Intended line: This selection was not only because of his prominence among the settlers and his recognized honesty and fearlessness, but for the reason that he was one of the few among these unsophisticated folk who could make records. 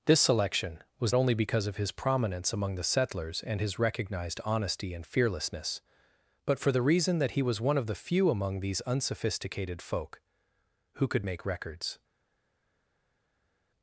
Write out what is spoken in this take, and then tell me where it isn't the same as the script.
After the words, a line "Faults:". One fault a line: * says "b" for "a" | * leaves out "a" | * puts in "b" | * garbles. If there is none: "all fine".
This selection was only because of his prominence among the settlers and his recognized honesty and fearlessness, but for the reason that he was one of the few among these unsophisticated folk who could make records.
Faults:
* leaves out "not"